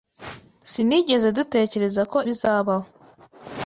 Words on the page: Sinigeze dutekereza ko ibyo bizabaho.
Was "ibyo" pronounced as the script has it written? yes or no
no